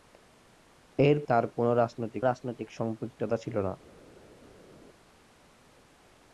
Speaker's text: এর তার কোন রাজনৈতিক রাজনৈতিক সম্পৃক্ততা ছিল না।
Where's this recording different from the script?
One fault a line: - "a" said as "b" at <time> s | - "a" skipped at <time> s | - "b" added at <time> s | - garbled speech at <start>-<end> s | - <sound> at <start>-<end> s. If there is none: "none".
none